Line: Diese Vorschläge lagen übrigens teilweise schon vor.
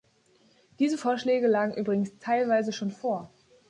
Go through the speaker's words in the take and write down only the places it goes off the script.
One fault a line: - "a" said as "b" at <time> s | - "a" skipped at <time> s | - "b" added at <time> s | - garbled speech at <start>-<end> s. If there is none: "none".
none